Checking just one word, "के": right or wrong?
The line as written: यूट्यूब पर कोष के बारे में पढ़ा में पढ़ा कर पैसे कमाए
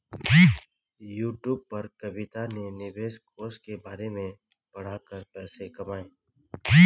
right